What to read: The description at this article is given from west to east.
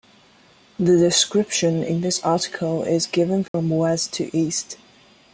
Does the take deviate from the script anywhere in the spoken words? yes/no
yes